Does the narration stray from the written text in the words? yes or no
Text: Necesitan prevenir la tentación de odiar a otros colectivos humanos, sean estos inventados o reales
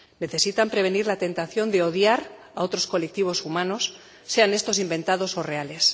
no